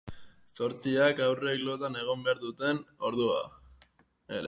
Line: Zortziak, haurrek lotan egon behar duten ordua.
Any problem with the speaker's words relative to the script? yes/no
no